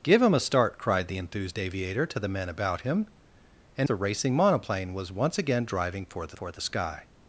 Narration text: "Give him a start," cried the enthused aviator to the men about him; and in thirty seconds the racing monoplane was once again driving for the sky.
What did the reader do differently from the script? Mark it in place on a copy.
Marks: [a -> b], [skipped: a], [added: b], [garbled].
"Give him a start," cried the enthused aviator to the men about him; and [skipped: in thirty seconds] the racing monoplane was once again driving for the [added: for the] sky.